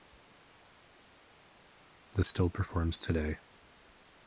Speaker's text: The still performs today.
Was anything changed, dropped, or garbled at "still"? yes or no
no